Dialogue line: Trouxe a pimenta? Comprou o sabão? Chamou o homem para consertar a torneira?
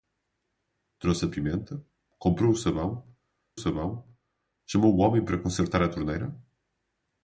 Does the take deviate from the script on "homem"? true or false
false